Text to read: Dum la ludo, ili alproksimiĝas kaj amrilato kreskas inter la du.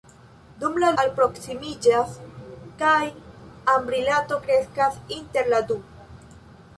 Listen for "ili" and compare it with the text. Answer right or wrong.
wrong